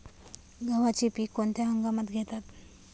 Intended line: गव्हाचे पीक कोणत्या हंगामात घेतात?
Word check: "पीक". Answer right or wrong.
right